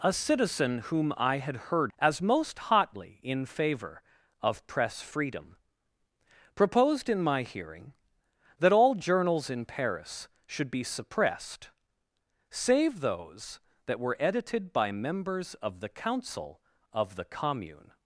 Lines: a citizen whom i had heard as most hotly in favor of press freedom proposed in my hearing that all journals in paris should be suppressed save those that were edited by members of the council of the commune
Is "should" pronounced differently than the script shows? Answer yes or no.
no